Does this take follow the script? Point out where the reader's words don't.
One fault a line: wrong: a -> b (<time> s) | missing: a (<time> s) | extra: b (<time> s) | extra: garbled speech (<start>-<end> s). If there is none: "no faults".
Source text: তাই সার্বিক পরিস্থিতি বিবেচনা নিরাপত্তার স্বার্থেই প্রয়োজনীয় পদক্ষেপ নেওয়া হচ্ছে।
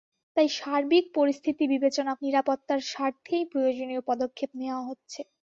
no faults